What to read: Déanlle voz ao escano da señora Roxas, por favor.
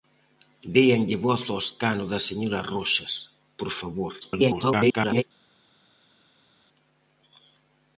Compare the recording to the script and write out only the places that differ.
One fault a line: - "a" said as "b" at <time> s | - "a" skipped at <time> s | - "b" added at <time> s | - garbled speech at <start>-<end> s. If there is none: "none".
- garbled speech at 4.2-5.2 s